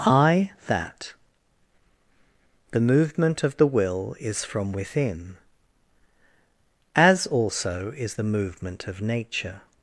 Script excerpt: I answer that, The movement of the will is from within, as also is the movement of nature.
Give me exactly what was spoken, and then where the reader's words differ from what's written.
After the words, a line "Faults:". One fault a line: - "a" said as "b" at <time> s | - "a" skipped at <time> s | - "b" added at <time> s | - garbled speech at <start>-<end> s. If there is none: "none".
I that, The movement of the will is from within, as also is the movement of nature.
Faults:
- "answer" skipped at 0.5 s